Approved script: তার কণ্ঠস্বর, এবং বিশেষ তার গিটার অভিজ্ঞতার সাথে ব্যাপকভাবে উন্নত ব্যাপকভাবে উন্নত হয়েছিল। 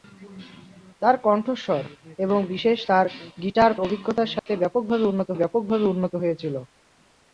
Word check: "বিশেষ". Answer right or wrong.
right